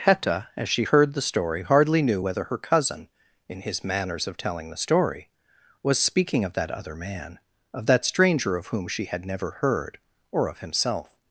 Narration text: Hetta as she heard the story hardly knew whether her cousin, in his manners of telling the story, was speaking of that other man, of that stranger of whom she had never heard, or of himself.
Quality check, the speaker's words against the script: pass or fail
pass